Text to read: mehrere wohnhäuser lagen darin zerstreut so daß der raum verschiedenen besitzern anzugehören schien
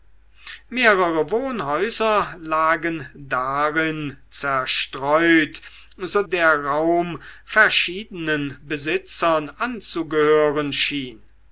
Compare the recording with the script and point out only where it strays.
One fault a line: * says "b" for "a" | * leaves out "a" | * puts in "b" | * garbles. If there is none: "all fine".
* leaves out "daß"